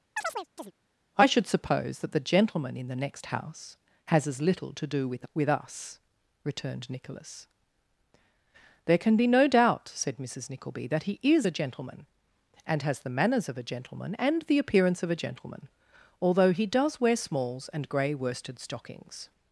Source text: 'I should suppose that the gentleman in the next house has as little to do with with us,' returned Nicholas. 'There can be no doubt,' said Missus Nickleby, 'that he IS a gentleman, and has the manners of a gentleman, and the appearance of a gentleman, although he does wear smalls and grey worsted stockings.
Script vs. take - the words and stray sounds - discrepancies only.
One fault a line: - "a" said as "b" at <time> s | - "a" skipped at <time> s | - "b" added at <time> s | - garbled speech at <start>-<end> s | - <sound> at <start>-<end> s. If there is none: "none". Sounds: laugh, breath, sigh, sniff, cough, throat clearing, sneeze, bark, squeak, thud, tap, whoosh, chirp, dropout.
- chirp at 0.2-0.7 s